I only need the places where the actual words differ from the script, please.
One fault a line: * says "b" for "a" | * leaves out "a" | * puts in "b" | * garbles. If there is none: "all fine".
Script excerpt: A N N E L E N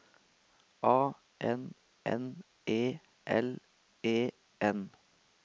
all fine